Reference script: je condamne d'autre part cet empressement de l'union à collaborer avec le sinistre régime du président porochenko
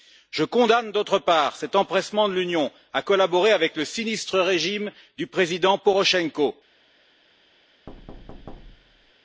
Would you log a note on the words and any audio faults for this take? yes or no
yes